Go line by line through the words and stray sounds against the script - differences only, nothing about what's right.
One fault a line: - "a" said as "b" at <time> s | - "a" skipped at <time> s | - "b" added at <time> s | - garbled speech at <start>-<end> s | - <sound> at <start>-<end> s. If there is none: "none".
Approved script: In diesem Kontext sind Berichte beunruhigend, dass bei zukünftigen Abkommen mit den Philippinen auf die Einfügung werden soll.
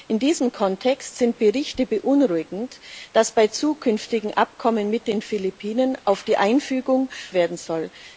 none